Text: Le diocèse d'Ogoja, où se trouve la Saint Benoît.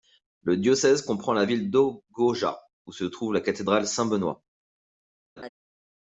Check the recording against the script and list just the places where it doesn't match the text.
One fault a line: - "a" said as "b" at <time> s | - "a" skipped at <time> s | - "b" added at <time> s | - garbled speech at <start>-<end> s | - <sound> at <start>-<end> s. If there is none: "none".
- "comprend la ville" added at 1.0 s
- "cathédrale" added at 3.4 s
- laugh at 5.4-5.5 s